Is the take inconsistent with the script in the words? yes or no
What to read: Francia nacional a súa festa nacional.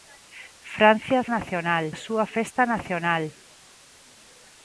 no